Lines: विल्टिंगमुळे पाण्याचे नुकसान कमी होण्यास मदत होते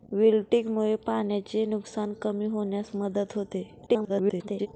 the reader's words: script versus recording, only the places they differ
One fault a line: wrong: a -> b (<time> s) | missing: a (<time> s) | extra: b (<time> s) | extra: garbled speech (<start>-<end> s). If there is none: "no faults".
extra: garbled speech (3.9-4.7 s)